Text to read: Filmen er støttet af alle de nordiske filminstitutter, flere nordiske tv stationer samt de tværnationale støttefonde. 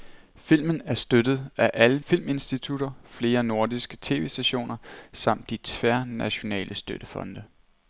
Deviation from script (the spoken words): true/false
true